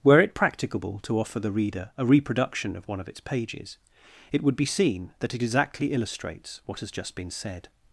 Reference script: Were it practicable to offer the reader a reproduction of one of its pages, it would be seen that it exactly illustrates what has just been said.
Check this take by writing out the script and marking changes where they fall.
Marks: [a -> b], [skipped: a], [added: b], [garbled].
Were it practicable to offer the reader a reproduction of one of its pages, it would be seen that it exactly illustrates what has just been said.